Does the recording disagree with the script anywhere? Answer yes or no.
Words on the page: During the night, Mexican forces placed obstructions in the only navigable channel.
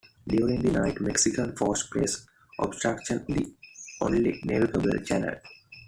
yes